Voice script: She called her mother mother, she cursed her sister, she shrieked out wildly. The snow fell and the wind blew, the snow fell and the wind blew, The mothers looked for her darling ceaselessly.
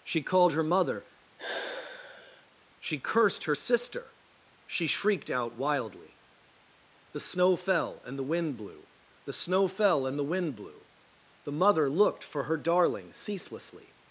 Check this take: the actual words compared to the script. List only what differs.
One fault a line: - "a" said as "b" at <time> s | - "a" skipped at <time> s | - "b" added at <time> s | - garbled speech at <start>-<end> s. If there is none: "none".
- "mother" skipped at 1.1 s
- "mothers" said as "mother" at 11.5 s